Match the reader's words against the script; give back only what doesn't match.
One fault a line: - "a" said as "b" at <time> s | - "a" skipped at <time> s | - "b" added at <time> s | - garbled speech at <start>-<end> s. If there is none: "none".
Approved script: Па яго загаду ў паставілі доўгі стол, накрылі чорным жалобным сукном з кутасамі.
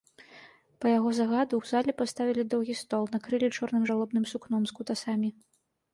- "зале" added at 1.7 s